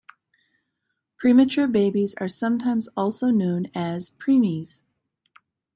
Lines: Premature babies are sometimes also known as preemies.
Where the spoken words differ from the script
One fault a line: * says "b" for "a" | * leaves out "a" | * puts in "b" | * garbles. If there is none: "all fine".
all fine